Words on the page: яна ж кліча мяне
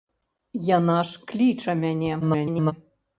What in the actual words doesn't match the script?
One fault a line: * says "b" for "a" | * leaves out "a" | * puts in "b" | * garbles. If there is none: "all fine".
* garbles